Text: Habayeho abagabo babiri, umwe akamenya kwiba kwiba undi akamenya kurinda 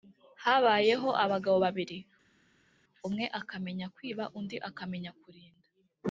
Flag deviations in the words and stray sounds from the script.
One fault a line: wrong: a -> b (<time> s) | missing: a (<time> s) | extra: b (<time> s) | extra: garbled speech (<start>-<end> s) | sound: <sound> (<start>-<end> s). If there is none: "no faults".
missing: kwiba (4.2 s)